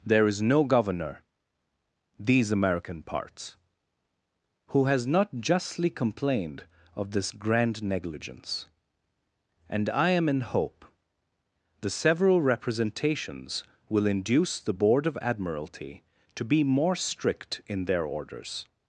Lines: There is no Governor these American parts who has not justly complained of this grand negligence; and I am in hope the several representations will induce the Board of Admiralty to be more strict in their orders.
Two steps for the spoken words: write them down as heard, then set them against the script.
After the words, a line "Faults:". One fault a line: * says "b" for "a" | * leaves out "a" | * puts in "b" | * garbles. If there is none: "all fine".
There is no Governor these American parts who has not justly complained of this grand negligence; and I am in hope the several representations will induce the Board of Admiralty to be more strict in their orders.
Faults:
all fine